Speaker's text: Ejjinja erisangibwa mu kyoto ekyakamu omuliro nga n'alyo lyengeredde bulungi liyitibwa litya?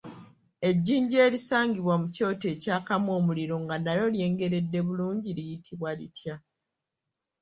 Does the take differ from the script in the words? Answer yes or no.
no